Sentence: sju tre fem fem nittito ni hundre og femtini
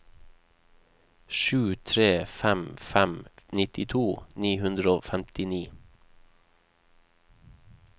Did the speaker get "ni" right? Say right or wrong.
right